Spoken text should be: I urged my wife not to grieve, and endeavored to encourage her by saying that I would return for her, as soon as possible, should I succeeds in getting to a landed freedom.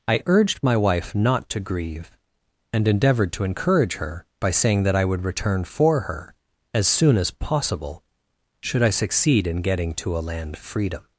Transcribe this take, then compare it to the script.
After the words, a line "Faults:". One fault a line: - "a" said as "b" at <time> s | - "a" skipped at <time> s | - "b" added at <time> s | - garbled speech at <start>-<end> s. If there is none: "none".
I urged my wife not to grieve, and endeavored to encourage her by saying that I would return for her, as soon as possible, should I succeed in getting to a land freedom.
Faults:
- "succeeds" said as "succeed" at 8.9 s
- "landed" said as "land" at 10.2 s